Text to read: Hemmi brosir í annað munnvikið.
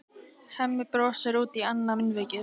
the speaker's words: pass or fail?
fail